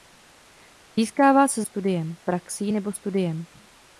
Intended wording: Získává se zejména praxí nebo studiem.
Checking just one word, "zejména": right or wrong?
wrong